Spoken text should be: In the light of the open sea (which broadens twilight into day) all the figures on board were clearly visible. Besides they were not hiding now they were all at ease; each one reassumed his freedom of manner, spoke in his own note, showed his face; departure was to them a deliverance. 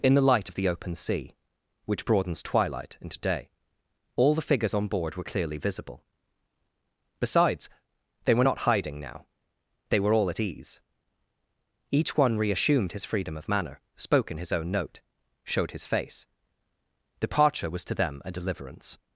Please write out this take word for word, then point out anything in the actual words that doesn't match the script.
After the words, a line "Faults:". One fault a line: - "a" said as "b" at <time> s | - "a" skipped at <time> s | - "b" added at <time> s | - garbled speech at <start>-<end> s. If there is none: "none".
In the light of the open sea (which broadens twilight into day) all the figures on board were clearly visible. Besides they were not hiding now they were all at ease; each one reassumed his freedom of manner, spoke in his own note, showed his face; departure was to them a deliverance.
Faults:
none